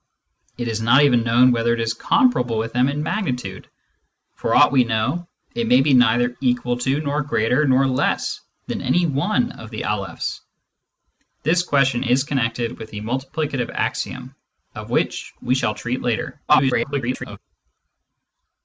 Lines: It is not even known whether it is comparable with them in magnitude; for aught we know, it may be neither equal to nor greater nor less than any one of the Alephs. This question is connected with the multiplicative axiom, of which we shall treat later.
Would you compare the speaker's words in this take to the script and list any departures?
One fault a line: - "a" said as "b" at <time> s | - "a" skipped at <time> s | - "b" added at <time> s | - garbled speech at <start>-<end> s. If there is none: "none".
- garbled speech at 16.5-17.4 s